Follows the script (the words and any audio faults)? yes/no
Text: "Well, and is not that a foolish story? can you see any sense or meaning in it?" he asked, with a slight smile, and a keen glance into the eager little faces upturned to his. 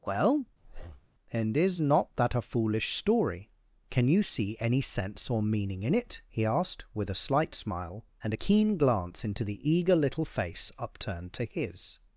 no